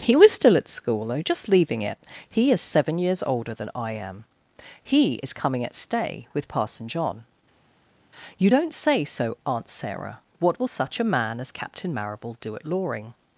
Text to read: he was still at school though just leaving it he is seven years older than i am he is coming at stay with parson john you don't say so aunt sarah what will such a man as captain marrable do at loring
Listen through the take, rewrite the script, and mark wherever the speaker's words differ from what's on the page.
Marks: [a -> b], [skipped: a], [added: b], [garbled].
he was still at school though just leaving it he is seven years older than i am he is coming at stay with parson john you don't say so aunt sarah what will such a man as captain marrable do at loring